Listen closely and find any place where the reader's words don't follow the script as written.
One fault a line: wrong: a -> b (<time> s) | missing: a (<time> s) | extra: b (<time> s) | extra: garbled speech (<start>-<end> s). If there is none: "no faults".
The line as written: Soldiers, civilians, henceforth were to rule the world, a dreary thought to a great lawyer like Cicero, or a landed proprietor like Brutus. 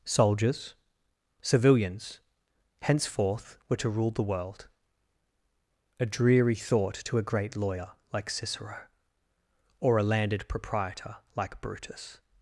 no faults